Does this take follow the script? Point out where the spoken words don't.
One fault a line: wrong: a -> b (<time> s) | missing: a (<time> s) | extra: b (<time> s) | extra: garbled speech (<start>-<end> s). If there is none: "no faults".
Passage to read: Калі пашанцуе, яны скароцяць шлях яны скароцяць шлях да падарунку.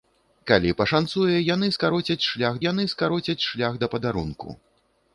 no faults